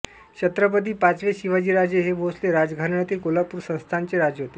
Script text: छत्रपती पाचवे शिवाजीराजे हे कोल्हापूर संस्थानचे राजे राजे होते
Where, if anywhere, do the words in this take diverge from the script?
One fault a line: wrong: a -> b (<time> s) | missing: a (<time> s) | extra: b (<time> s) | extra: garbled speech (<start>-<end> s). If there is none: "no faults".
extra: भोसले राजघराण्यातील (2.1 s)
missing: राजे (4.4 s)